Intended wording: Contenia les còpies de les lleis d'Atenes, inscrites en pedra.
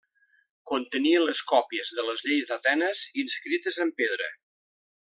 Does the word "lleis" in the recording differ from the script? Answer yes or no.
no